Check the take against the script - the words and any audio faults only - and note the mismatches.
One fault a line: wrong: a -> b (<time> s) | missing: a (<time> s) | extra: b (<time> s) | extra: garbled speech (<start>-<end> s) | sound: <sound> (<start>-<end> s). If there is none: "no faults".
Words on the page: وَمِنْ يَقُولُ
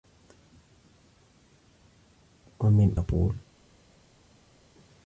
no faults